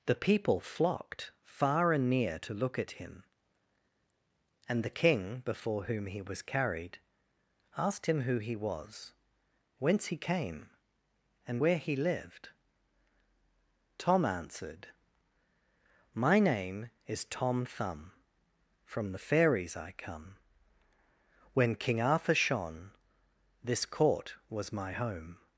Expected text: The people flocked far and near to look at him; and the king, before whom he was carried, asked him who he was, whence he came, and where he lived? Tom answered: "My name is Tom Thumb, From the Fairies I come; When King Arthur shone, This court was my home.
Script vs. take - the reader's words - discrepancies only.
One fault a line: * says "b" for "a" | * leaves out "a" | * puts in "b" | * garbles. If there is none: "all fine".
all fine